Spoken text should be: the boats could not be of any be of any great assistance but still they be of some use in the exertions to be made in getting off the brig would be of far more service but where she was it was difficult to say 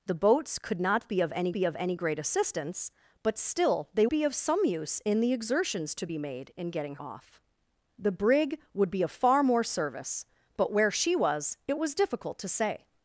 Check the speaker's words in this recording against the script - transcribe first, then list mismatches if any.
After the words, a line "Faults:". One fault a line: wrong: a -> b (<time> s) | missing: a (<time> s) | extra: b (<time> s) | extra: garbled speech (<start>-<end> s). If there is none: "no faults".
the boats could not be of any be of any great assistance but still they be of some use in the exertions to be made in getting off the brig would be of far more service but where she was it was difficult to say
Faults:
no faults